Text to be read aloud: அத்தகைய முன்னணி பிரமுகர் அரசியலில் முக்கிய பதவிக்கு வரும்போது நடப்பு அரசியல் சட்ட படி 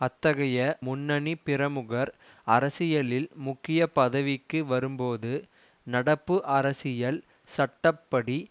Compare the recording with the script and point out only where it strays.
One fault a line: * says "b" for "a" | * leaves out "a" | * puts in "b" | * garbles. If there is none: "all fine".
all fine